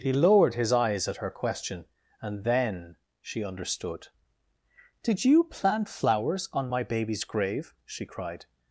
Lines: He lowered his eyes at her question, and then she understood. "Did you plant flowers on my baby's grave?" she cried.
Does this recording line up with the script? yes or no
yes